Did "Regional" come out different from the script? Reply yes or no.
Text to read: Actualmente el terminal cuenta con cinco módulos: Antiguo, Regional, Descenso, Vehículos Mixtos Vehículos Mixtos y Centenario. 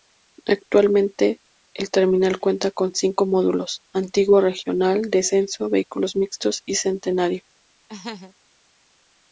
no